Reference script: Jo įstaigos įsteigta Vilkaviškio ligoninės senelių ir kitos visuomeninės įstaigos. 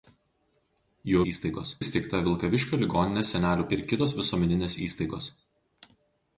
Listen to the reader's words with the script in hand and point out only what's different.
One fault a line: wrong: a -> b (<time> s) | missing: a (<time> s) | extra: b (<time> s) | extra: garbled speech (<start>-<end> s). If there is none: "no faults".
no faults